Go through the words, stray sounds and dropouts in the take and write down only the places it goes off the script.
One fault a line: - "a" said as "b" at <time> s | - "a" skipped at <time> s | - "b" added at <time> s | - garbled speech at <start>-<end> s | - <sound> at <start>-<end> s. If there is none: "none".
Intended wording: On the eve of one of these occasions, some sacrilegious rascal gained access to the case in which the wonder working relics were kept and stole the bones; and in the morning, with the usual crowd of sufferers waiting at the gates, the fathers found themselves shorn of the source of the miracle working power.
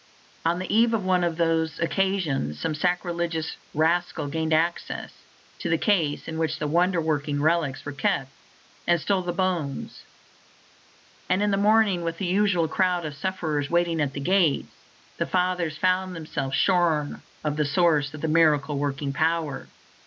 none